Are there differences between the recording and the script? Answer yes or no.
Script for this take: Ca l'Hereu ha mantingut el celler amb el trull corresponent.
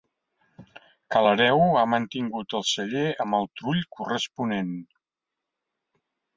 no